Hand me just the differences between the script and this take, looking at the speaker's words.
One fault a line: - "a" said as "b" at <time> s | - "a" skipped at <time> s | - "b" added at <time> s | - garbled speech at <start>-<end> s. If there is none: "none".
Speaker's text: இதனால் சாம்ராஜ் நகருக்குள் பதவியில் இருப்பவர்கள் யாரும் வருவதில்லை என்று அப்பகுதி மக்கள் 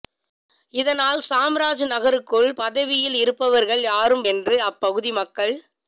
- "வருவதில்லை" skipped at 4.2 s